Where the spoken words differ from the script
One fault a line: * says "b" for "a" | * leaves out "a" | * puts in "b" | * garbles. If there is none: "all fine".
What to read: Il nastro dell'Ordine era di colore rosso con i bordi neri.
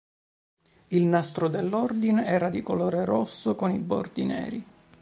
all fine